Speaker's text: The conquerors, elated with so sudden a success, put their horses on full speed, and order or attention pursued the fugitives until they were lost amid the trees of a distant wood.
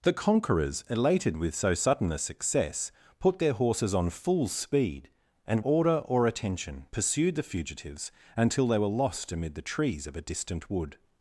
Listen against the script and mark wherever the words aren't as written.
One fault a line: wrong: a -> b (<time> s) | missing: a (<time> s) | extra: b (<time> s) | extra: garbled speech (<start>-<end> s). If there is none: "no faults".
no faults